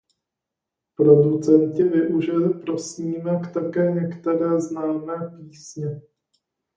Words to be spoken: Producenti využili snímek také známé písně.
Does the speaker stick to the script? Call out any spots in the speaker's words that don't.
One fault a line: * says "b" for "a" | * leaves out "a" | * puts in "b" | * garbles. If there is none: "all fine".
* puts in "pro"
* puts in "některé"